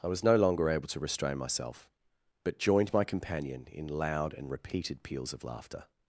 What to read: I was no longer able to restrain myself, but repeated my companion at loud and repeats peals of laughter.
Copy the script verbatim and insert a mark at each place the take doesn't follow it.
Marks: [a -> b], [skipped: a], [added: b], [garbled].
I was no longer able to restrain myself, but [repeated -> joined] my companion [at -> in] loud and [repeats -> repeated] peals of laughter.